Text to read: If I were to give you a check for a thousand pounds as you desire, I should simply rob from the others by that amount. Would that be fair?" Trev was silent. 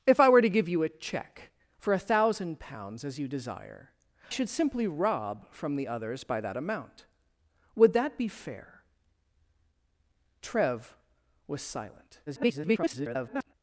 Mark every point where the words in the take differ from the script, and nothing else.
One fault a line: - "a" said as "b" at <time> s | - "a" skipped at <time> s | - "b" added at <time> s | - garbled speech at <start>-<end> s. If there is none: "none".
- "I" skipped at 3.9 s
- garbled speech at 12.3-13.5 s